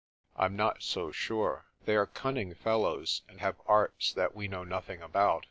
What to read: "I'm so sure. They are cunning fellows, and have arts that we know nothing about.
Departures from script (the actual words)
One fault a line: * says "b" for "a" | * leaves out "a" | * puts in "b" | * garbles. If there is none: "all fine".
* puts in "not"